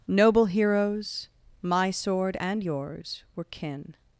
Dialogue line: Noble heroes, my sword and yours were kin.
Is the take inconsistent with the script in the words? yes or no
no